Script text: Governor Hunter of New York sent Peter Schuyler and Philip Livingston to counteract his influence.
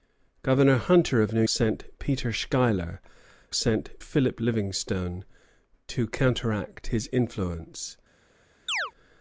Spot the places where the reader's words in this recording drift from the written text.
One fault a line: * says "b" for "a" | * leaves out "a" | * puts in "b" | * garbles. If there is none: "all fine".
* leaves out "York"
* says "sent" for "and"